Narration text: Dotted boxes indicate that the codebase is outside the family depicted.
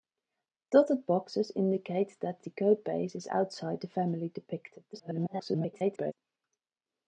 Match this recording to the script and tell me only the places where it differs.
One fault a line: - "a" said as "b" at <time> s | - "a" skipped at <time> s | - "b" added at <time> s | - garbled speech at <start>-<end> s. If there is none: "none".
- garbled speech at 4.9-6.1 s